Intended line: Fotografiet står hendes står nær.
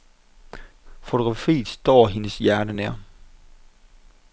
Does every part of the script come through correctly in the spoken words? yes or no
no